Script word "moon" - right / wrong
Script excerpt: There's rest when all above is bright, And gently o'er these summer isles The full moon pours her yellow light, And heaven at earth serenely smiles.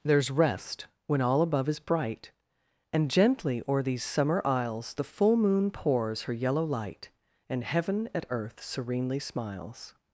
right